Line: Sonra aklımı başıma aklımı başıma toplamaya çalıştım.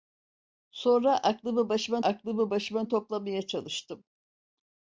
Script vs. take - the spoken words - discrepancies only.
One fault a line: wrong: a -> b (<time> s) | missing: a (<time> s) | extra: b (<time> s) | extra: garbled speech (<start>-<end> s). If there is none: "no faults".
no faults